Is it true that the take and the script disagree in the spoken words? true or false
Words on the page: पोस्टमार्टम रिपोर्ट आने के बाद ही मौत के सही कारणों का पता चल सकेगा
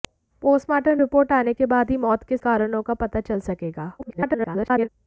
true